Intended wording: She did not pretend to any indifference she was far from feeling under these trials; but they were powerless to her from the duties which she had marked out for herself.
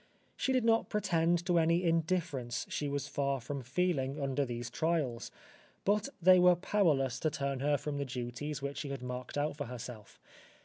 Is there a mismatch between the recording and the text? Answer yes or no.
yes